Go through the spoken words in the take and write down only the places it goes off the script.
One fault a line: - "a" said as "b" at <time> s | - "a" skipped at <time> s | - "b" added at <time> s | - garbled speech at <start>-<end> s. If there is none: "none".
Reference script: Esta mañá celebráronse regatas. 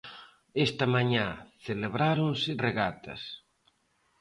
none